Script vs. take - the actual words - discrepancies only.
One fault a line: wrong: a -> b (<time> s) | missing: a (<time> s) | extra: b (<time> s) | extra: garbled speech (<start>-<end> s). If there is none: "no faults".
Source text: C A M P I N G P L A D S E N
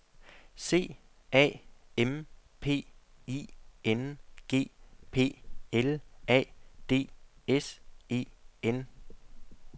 no faults